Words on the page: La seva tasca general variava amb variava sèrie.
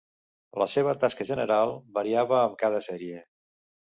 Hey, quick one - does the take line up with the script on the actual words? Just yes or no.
no